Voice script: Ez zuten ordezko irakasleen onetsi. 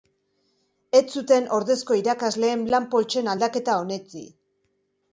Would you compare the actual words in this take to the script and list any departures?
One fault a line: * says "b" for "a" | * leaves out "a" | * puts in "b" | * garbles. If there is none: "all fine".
* puts in "lan poltsen aldaketa"